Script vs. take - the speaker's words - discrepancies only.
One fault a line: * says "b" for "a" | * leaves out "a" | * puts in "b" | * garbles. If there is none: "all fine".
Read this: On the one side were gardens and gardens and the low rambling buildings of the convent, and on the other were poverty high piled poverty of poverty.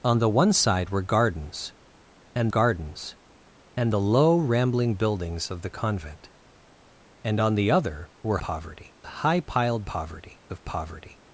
all fine